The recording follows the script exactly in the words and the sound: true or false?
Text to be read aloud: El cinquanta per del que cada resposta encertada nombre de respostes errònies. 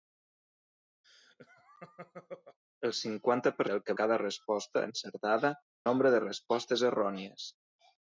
false